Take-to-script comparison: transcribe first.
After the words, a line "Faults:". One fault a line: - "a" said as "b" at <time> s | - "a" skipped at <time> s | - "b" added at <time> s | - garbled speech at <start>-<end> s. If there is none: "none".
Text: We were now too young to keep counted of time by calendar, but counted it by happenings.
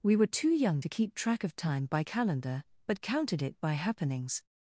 We were too young to keep track of time by calendar, but counted it by happenings.
Faults:
- "now" skipped at 0.3 s
- "counted" said as "track" at 1.1 s